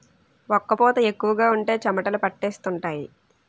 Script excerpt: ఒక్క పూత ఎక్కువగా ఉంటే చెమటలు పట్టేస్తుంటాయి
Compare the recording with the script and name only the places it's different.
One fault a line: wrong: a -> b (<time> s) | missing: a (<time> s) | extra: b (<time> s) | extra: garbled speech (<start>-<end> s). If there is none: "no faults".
no faults